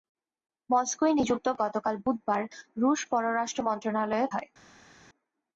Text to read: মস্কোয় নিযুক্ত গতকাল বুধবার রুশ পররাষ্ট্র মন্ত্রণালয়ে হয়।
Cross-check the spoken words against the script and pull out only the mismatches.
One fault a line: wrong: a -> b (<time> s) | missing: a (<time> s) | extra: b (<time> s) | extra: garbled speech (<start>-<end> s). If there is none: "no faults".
no faults